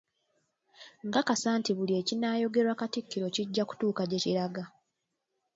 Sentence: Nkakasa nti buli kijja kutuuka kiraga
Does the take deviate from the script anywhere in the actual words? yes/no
yes